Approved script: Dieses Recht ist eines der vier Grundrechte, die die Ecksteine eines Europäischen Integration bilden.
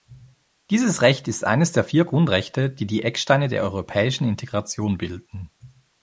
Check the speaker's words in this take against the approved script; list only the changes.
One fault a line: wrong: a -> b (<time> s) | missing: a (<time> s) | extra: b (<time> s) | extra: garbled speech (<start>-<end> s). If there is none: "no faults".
wrong: eines -> der (3.5 s)